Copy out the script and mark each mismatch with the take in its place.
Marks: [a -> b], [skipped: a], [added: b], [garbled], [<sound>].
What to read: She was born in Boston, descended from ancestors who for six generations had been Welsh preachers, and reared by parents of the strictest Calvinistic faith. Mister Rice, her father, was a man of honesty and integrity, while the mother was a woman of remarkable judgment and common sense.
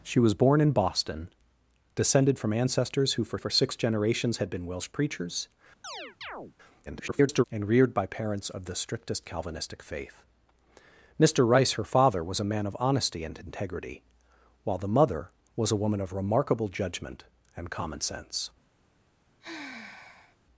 She was born in Boston, descended from ancestors who for [added: for] six generations had been Welsh preachers, [chirp] [garbled] and reared by parents of the strictest Calvinistic faith. Mister Rice, her father, was a man of honesty and integrity, while the mother was a woman of remarkable judgment and common sense. [sigh]